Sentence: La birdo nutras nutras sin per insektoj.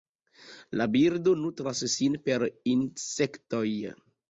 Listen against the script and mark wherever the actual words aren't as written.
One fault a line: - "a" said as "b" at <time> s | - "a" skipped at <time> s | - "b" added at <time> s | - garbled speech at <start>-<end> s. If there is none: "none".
- "nutras" skipped at 1.8 s